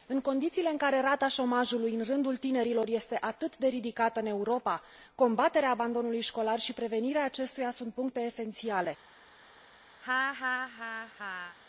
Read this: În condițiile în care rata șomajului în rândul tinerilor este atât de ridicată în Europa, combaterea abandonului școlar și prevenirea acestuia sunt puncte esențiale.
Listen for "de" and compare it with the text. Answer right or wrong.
right